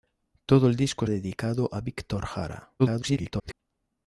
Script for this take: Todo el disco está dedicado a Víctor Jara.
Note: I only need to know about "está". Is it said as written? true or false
false